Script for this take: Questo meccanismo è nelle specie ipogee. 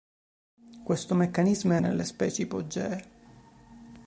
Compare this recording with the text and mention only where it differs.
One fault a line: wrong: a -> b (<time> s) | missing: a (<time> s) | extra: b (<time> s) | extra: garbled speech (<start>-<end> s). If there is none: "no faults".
no faults